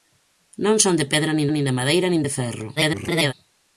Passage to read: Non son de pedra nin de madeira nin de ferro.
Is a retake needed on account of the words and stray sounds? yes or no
yes